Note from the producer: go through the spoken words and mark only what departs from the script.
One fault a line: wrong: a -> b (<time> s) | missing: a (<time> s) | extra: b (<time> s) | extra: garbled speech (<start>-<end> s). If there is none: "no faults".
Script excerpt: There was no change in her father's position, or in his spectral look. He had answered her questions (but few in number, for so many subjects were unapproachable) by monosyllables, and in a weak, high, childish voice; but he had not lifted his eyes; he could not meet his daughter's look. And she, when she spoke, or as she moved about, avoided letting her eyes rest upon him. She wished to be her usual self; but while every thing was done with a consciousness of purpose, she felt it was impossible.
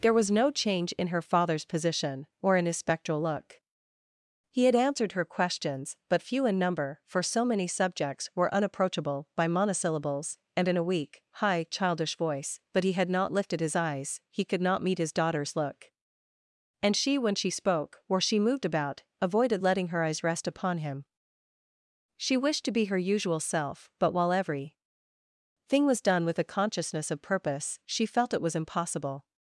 missing: as (18.2 s)